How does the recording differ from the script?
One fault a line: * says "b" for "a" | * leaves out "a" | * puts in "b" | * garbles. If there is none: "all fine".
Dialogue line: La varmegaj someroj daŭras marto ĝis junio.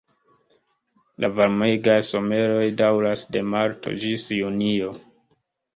* puts in "de"